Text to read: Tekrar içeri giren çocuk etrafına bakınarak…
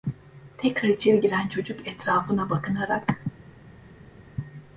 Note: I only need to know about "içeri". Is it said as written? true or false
true